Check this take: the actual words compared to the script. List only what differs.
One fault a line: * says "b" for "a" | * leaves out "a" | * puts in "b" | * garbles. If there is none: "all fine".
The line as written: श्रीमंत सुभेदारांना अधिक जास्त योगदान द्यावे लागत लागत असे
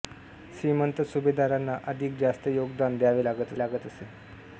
all fine